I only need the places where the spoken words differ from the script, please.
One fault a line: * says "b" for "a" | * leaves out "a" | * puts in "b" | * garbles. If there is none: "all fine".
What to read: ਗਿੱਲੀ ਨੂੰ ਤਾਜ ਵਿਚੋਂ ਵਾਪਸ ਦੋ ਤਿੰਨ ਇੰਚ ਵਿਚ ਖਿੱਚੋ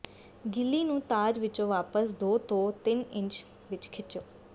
* puts in "ਤੋਂ"